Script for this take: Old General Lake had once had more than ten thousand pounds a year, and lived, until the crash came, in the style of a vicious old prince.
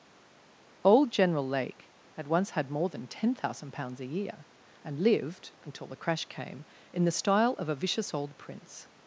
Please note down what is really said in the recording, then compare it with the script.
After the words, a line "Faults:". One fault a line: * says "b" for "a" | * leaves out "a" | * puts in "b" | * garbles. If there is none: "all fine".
Old General Lake had once had more than ten thousand pounds a year, and lived, until the crash came, in the style of a vicious old prince.
Faults:
all fine